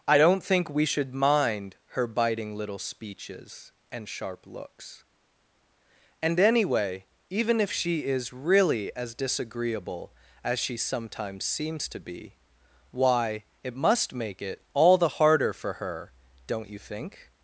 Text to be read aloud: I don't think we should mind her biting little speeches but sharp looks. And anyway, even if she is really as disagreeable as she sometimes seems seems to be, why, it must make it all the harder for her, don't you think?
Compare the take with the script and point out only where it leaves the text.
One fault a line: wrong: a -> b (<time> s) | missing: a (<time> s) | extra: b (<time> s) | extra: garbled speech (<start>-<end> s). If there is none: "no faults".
wrong: but -> and (3.9 s)
missing: seems (11.9 s)